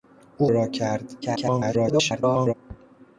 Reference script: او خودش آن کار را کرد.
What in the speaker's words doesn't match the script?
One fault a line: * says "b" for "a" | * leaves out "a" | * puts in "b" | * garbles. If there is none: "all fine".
* leaves out "خودش آن کار"
* garbles